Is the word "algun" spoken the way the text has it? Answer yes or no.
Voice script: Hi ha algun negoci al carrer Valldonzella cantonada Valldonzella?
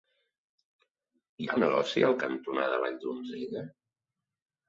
no